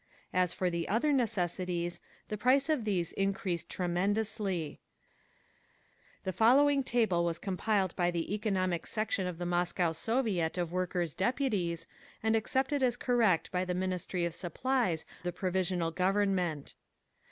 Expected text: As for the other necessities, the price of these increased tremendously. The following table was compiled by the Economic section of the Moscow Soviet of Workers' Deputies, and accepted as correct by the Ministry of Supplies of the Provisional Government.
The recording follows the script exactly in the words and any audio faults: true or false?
false